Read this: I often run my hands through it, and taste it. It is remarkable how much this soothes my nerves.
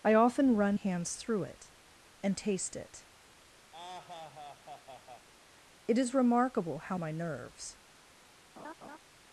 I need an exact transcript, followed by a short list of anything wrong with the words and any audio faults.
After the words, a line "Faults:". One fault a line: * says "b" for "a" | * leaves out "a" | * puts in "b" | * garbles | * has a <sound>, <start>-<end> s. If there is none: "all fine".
I often run hands through it, and taste it. It is remarkable how my nerves.
Faults:
* leaves out "my"
* has a laugh, 3.7-5.3 s
* leaves out "much this soothes"
* has a laugh, 8.6-9.0 s